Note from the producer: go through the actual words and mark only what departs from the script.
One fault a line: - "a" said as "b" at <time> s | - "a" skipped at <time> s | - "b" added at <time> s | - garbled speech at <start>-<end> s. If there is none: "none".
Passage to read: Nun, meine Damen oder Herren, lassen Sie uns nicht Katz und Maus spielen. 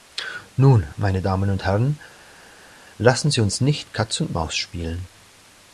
- "oder" said as "und" at 1.5 s